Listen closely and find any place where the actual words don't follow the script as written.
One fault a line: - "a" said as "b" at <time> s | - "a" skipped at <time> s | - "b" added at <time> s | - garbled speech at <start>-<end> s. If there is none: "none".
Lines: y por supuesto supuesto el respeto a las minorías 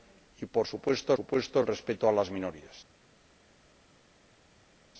none